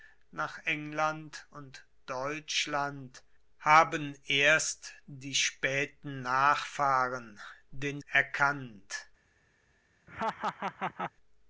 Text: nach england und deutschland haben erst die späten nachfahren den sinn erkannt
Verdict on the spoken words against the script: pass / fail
fail